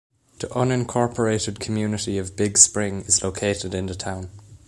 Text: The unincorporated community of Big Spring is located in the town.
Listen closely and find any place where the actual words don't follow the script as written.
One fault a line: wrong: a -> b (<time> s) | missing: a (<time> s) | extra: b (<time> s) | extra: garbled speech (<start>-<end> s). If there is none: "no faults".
no faults